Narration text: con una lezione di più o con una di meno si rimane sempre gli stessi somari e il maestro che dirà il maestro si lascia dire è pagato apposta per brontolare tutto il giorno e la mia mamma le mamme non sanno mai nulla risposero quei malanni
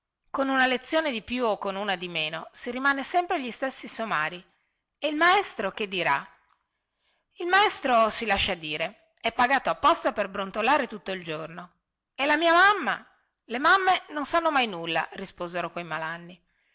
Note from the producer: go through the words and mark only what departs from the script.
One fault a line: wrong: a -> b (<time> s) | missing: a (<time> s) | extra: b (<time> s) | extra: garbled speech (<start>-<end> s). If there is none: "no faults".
no faults